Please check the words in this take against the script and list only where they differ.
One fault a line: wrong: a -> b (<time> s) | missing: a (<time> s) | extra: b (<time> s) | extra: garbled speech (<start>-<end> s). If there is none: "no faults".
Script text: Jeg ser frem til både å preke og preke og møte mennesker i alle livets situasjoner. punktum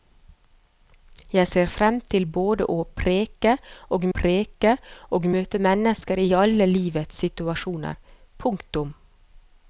no faults